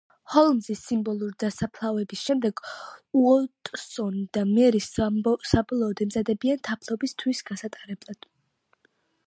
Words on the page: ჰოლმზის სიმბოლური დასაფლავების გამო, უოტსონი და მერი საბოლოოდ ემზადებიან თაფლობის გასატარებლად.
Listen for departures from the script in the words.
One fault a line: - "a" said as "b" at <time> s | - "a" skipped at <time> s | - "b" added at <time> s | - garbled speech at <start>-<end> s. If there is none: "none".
- "გამო" said as "შემდეგ" at 2.3 s
- "თვის" added at 7.2 s